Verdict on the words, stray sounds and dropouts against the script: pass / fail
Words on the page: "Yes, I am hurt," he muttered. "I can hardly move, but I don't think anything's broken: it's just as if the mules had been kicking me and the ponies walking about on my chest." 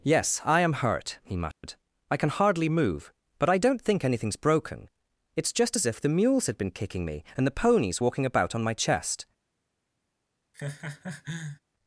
fail